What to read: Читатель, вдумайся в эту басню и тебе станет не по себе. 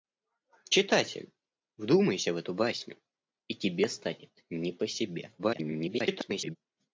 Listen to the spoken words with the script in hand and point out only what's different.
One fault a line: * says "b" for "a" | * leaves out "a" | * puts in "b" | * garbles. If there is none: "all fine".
* garbles